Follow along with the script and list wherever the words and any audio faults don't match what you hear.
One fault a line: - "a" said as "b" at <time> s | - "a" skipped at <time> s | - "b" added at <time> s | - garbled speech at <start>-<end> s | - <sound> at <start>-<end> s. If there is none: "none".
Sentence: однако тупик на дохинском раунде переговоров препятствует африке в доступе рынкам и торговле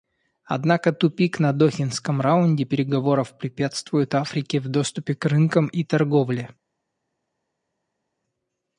- "к" added at 5.1 s